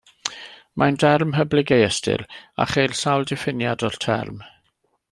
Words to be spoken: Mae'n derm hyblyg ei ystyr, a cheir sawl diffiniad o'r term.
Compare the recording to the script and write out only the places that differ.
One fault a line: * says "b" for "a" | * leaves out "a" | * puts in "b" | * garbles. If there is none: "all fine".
all fine